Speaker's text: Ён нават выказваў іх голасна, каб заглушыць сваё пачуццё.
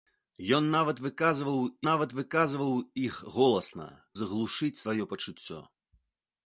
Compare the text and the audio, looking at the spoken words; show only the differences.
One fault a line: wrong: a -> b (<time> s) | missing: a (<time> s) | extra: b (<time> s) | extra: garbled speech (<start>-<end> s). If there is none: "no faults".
extra: нават выказваў (1.9 s)
missing: каб (3.9 s)